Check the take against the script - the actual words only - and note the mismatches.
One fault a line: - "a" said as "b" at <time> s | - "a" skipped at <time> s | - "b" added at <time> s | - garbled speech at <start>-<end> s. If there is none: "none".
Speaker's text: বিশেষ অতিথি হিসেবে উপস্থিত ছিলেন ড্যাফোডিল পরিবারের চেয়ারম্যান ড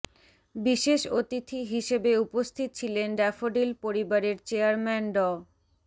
none